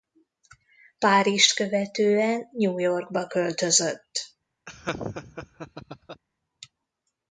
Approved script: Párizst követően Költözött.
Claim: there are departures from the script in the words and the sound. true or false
true